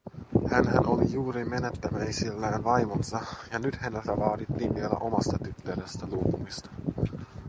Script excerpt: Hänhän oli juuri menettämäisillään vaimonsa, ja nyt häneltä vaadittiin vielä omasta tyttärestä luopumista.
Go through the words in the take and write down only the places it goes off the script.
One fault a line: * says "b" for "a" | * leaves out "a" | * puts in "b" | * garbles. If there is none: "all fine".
all fine